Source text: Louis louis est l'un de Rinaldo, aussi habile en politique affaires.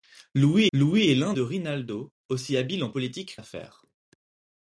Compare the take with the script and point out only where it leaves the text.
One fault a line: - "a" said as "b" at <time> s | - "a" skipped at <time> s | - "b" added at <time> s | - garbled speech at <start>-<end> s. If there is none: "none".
none